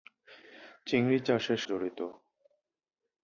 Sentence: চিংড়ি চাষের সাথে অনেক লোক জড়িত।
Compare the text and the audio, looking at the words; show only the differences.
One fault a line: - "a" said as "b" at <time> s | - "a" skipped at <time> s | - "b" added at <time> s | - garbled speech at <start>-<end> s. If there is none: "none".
- "সাথে অনেক লোক" skipped at 1.6 s